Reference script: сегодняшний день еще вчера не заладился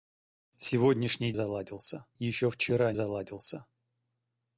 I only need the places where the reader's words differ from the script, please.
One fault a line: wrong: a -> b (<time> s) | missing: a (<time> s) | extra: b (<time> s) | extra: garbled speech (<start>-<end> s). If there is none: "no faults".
wrong: день -> заладился (1.3 s)
missing: не (2.9 s)